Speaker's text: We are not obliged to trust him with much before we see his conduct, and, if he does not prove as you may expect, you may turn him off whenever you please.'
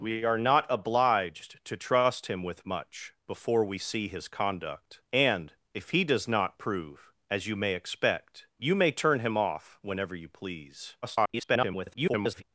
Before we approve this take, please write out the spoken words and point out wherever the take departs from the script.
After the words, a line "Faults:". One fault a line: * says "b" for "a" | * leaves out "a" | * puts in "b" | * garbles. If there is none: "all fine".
We are not obliged to trust him with much before we see his conduct, and, if he does not prove as you may expect, you may turn him off whenever you please.' [garbled]
Faults:
* garbles